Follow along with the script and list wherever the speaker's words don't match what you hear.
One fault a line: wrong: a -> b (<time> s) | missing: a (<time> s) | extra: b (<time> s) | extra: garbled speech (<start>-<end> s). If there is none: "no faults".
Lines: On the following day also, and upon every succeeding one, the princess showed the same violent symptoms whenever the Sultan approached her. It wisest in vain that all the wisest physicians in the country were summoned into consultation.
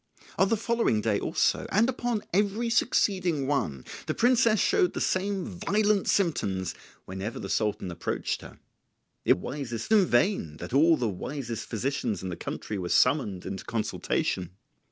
no faults